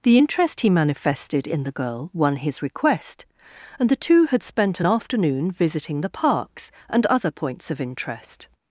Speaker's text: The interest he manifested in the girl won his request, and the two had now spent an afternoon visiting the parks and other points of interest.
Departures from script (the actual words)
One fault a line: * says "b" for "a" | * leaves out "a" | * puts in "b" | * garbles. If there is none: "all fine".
* leaves out "now"